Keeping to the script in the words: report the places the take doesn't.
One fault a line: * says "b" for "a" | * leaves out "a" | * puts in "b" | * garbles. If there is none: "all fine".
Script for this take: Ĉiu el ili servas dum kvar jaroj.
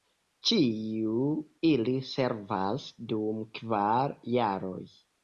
* leaves out "el"